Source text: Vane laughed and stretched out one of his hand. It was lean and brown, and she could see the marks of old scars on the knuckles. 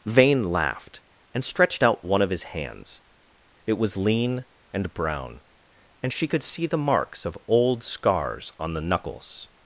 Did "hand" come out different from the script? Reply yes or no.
yes